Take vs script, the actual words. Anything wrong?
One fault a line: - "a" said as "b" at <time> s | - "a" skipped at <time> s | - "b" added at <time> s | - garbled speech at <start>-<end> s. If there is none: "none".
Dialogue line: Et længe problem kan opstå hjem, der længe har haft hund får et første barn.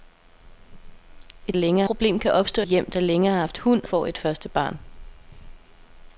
none